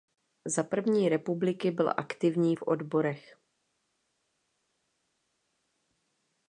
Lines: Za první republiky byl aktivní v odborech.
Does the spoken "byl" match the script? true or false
true